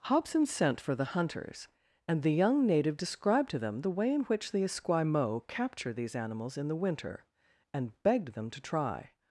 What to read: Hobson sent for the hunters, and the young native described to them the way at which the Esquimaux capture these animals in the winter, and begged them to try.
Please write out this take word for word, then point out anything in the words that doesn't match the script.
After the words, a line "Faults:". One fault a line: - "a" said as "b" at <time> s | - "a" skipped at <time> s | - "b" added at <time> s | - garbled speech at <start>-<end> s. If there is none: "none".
Hobson sent for the hunters, and the young native described to them the way in which the Esquimaux capture these animals in the winter, and begged them to try.
Faults:
- "at" said as "in" at 4.1 s